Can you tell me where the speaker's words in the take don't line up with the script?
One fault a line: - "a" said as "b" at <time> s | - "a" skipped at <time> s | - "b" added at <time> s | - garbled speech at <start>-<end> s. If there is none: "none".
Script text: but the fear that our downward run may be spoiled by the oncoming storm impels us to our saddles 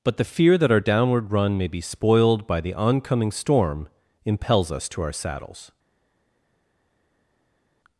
none